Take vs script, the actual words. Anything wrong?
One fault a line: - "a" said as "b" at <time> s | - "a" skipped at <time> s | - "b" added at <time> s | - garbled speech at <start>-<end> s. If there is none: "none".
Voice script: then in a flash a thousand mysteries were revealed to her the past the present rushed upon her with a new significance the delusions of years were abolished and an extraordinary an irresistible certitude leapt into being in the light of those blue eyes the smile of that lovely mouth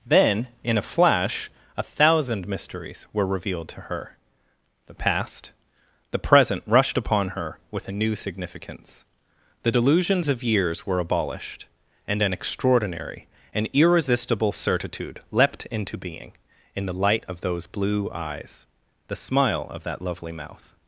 none